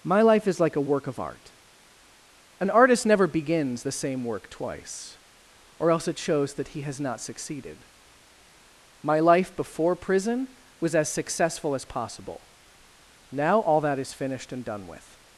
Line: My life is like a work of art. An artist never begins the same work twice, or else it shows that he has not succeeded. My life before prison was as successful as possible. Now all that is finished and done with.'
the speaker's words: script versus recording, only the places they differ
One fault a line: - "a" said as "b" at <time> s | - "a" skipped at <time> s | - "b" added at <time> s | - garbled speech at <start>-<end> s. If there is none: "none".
none